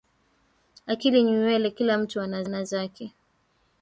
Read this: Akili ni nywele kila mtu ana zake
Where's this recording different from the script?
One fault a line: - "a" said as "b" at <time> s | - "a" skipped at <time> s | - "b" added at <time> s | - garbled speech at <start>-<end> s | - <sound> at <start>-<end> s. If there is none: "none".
- "ana" added at 2.4 s